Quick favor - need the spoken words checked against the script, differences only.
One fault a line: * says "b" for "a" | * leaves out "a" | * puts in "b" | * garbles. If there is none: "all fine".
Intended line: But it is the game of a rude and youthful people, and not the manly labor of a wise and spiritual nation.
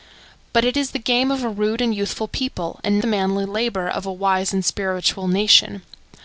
* leaves out "not"